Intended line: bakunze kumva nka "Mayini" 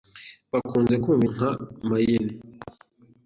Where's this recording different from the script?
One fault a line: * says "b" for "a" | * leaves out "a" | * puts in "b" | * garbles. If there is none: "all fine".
all fine